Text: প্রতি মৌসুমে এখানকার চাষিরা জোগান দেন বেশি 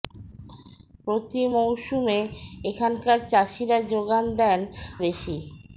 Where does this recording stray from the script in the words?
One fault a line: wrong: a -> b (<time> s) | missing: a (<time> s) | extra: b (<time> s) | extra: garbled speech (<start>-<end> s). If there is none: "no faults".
no faults